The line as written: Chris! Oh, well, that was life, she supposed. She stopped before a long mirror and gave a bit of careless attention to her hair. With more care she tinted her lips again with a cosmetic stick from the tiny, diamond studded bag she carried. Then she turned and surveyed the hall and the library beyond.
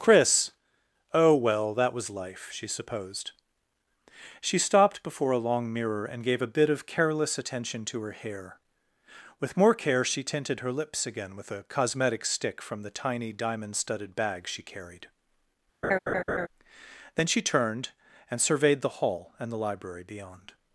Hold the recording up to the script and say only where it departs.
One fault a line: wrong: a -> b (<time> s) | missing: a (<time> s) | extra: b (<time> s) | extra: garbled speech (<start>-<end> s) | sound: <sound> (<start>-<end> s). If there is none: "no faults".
sound: laugh (15.8-16.5 s)